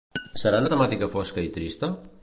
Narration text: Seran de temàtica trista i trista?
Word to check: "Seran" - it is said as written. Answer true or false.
true